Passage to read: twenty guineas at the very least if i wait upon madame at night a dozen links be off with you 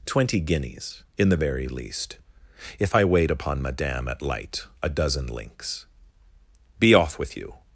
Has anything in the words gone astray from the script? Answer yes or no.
yes